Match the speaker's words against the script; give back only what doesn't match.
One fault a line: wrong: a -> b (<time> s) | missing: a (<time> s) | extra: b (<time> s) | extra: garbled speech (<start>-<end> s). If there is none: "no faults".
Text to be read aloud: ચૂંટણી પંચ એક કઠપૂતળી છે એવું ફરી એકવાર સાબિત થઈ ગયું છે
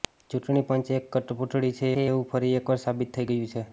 extra: છે (1.9 s)